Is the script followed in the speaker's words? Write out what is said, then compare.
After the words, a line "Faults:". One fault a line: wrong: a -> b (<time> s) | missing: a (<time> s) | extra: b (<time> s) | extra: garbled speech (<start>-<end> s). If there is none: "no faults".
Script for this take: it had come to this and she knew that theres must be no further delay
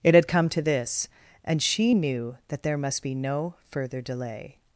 it had come to this and she knew that there must be no further delay
Faults:
wrong: theres -> there (2.6 s)